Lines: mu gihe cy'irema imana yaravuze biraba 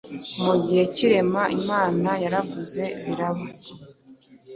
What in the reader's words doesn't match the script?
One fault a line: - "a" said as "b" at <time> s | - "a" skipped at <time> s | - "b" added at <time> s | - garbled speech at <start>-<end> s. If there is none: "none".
none